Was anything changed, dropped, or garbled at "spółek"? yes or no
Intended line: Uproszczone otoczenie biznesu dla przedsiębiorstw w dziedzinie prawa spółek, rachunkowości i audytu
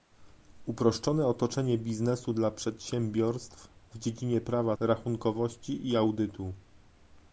yes